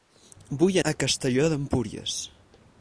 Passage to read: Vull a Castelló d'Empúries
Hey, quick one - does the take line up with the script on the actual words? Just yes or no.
yes